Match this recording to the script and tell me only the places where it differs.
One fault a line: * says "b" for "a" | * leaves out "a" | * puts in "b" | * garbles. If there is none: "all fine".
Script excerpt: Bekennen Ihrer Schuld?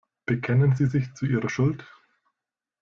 * puts in "Sie sich zu"